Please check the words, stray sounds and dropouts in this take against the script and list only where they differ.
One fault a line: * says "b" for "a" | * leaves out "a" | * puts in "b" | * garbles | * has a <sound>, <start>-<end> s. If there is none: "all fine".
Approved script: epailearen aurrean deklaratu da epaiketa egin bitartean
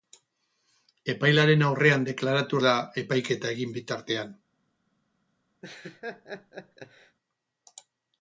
* has a laugh, 5.6-7.2 s